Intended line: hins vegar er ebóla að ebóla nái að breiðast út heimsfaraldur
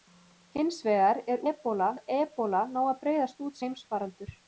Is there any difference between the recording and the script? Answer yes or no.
no